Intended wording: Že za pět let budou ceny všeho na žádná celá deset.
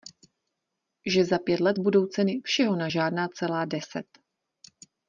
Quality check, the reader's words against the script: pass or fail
pass